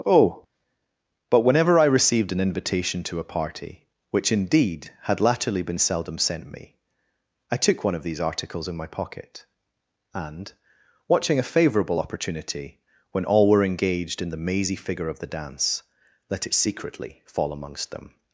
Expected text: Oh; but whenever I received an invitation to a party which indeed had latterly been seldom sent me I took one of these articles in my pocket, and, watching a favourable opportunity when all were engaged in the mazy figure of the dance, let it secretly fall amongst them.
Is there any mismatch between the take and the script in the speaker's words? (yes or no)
no